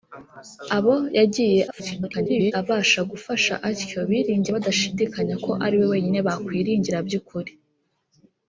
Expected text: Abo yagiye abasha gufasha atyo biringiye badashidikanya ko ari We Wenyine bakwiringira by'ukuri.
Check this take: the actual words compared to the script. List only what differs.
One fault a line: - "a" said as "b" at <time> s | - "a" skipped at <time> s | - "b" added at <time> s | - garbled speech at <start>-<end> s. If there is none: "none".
- garbled speech at 1.7-2.5 s